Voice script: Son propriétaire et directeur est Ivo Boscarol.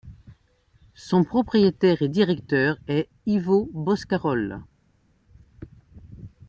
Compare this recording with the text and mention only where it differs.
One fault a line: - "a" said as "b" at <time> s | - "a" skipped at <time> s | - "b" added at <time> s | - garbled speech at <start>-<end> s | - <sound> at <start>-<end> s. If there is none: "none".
none